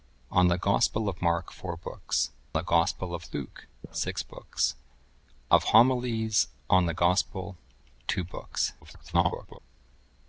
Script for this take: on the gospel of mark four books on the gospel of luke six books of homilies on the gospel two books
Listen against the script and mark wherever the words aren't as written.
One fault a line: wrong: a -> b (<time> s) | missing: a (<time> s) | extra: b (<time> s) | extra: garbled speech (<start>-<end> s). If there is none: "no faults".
missing: on (2.3 s)
extra: garbled speech (8.8-9.6 s)